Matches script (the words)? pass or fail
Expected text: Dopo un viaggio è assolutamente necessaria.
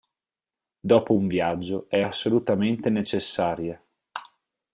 pass